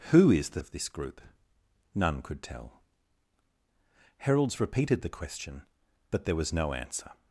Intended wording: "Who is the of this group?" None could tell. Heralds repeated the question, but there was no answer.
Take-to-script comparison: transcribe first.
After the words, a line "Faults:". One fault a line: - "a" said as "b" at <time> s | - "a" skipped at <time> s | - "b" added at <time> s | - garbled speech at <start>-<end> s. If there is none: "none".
"Who is the of this group?" None could tell. Heralds repeated the question, but there was no answer.
Faults:
none